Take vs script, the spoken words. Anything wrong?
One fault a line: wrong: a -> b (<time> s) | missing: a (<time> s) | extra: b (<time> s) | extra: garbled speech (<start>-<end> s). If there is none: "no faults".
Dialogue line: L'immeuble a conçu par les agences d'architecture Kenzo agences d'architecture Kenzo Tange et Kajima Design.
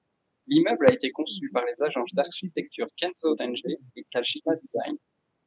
extra: été (0.9 s)
missing: agences d'architecture Kenzo (3.3 s)